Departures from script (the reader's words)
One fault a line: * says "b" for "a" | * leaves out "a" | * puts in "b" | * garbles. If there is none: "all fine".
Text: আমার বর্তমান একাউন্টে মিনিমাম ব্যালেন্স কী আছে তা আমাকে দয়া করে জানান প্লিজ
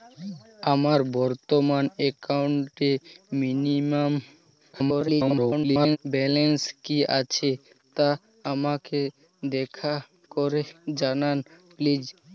* garbles